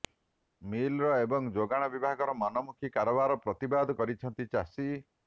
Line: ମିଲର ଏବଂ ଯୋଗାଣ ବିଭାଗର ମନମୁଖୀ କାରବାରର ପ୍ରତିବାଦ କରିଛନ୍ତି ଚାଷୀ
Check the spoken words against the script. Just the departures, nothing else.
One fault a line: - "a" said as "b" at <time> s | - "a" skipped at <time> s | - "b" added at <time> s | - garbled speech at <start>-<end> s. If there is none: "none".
none